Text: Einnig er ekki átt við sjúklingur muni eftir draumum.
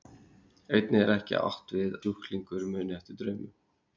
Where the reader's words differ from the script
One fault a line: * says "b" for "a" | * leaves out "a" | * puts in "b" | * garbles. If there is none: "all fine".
all fine